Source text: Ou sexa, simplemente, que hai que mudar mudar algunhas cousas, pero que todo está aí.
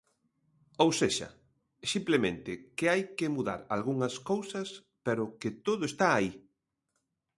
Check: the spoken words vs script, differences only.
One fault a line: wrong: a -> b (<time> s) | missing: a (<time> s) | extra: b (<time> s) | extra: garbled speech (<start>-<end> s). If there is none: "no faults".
missing: mudar (3.6 s)